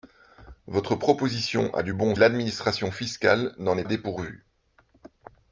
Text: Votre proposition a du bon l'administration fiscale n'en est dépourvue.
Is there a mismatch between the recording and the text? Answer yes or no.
no